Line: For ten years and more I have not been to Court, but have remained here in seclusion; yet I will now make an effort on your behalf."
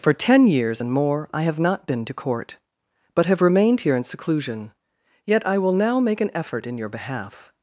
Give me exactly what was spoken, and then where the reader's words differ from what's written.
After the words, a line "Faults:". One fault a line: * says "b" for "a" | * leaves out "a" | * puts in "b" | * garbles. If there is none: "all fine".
For ten years and more I have not been to Court, but have remained here in seclusion; yet I will now make an effort in your behalf."
Faults:
* says "in" for "on"